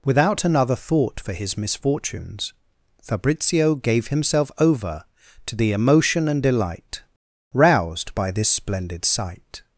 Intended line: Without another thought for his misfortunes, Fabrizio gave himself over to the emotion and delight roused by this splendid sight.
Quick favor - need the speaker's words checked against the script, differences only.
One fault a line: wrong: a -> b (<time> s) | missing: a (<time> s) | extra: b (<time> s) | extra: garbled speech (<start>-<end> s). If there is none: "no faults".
no faults